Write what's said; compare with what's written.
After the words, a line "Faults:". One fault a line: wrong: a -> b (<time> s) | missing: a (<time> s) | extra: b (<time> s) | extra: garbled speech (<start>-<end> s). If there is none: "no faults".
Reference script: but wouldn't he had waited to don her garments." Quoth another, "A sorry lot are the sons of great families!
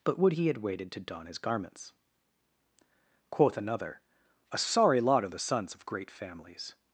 but would he had waited to don his garments." Quoth another, "A sorry lot are the sons of great families!
Faults:
wrong: wouldn't -> would (0.2 s)
wrong: her -> his (1.2 s)